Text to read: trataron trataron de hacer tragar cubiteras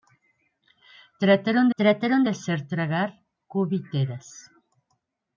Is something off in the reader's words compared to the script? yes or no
no